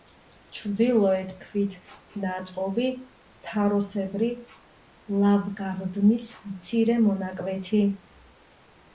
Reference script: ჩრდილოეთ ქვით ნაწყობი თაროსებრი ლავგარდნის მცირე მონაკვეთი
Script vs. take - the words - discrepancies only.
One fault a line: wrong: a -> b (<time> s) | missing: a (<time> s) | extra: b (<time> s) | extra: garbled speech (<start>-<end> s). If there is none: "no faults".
no faults